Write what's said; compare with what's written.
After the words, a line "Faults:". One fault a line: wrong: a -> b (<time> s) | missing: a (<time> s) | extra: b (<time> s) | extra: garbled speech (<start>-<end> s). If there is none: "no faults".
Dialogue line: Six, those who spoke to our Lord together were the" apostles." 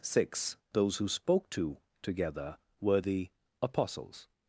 Six, those who spoke to together were the" apostles."
Faults:
missing: our Lord (1.8 s)